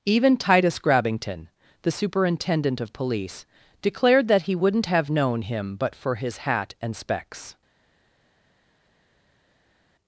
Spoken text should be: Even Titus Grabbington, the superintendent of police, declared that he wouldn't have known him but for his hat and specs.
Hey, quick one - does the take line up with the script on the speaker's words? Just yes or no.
yes